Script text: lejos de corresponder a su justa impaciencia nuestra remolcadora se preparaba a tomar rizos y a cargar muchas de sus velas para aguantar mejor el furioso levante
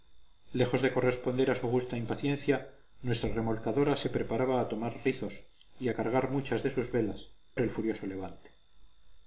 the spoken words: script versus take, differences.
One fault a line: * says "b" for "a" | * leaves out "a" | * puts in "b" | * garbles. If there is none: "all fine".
* leaves out "para aguantar mejor"